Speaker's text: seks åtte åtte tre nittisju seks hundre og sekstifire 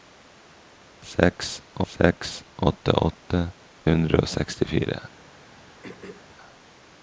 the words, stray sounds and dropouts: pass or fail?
fail